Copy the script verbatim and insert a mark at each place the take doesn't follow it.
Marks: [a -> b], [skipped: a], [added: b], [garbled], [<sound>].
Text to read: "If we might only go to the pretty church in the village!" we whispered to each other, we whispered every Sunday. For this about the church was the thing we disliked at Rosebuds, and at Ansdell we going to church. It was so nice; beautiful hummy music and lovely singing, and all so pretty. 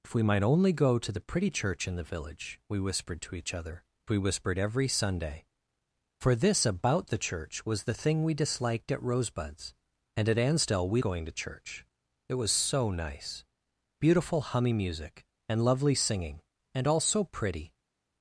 "If we might only go to the pretty church in the village!" we whispered to each other, we whispered every Sunday. For this about the church was the thing we disliked at Rosebuds, and at Ansdell we going to church. It was so nice; beautiful hummy music and lovely singing, and all so pretty.